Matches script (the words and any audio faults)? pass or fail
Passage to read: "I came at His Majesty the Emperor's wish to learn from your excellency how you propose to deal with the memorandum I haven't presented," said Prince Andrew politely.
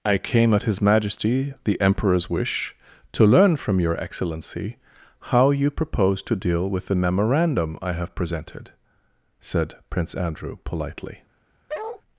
fail